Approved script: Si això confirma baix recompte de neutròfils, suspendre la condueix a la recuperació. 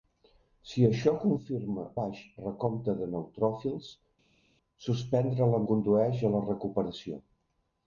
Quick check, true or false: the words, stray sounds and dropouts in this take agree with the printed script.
true